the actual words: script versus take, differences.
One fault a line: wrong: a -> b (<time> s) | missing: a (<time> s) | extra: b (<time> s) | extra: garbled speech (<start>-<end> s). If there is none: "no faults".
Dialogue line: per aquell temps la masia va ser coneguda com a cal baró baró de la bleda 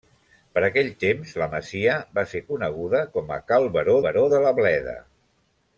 no faults